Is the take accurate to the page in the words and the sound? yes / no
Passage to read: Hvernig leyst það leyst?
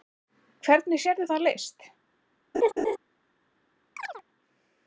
no